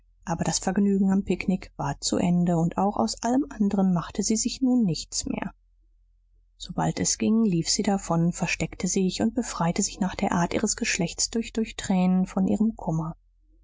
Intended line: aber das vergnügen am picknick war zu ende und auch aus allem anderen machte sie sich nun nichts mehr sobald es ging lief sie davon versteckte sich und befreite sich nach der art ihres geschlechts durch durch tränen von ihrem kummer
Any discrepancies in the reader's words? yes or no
no